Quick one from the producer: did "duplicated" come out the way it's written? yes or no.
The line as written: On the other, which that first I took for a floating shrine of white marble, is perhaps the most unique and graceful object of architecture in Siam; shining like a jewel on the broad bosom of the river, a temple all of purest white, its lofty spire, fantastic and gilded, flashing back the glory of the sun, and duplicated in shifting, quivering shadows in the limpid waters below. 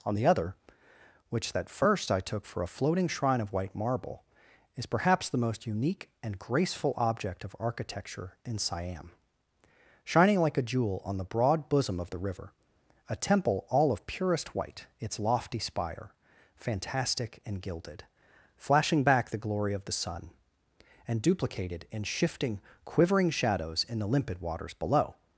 yes